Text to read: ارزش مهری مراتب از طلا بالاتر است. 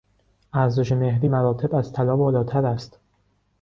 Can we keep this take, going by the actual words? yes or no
yes